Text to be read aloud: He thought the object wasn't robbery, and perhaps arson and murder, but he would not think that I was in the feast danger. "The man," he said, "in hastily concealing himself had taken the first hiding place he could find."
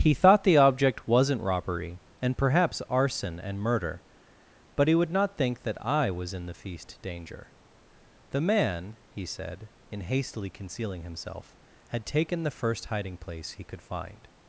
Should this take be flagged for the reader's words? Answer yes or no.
no